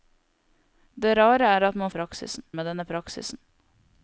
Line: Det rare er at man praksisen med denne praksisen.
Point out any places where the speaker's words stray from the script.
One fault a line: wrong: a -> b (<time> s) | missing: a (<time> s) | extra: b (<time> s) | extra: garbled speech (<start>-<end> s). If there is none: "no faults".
no faults